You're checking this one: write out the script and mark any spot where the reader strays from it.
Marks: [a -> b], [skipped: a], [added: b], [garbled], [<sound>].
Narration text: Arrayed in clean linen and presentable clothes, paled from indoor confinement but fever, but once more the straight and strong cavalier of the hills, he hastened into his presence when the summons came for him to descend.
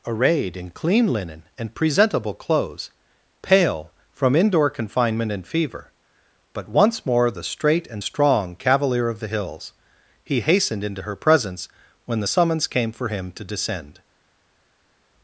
Arrayed in clean linen and presentable clothes, [paled -> pale] from indoor confinement [but -> and] fever, but once more the straight and strong cavalier of the hills, he hastened into [his -> her] presence when the summons came for him to descend.